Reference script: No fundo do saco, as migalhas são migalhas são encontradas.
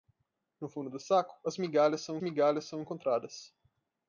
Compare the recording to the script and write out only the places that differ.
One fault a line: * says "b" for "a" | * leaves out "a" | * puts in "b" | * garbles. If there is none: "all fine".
all fine